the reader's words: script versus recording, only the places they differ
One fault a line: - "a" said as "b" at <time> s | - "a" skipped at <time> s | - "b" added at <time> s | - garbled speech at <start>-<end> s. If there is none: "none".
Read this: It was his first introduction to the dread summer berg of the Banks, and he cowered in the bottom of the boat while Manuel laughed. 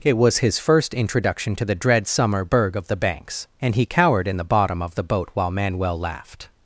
none